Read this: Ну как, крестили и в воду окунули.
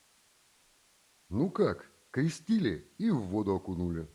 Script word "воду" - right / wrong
right